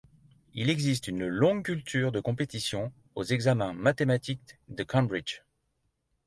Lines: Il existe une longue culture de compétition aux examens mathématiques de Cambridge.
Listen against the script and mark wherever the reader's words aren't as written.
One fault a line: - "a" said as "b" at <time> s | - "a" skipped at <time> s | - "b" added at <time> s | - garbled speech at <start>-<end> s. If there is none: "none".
none